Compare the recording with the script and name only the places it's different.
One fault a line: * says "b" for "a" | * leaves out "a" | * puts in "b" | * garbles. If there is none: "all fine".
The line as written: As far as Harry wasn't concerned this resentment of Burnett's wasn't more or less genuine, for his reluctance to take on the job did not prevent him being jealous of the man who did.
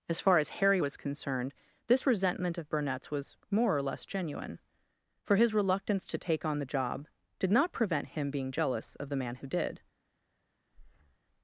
* says "was" for "wasn't"
* says "was" for "wasn't"